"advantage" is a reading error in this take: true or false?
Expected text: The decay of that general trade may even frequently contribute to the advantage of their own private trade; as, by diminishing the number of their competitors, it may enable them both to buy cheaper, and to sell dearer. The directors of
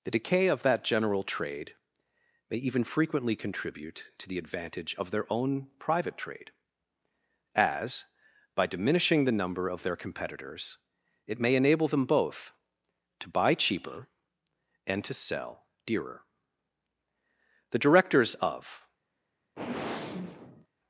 false